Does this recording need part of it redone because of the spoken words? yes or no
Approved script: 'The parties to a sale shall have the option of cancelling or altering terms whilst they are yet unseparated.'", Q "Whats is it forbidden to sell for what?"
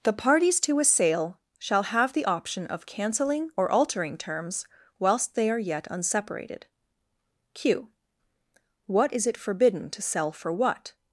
yes